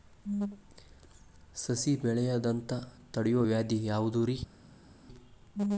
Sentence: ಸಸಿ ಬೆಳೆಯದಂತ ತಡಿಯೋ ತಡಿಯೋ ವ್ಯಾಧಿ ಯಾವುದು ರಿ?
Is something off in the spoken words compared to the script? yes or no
yes